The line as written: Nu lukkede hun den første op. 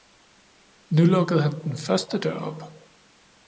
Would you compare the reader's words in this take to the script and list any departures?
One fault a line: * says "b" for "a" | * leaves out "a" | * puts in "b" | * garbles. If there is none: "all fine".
* says "han" for "hun"
* puts in "dør"